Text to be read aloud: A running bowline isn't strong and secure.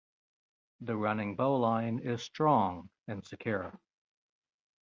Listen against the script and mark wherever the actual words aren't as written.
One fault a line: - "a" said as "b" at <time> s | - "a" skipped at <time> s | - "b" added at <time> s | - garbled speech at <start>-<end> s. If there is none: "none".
- "A" said as "The" at 0.8 s
- "isn't" said as "is" at 2.0 s